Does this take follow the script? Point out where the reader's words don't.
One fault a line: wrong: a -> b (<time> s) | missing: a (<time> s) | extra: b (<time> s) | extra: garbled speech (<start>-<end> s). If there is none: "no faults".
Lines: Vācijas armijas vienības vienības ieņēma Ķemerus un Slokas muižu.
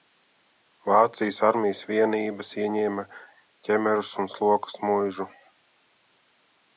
missing: vienības (2.5 s)